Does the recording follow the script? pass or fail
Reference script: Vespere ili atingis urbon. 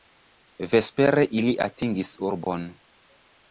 pass